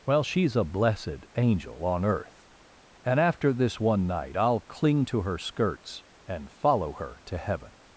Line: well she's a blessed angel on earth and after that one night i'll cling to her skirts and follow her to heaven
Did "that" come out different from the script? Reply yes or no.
yes